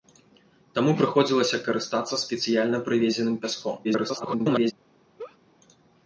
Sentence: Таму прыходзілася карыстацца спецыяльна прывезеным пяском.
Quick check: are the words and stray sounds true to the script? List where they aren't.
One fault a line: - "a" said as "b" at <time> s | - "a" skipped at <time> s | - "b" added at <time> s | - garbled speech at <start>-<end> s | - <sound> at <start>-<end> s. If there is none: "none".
- garbled speech at 3.8-4.7 s
- laugh at 5.2-5.4 s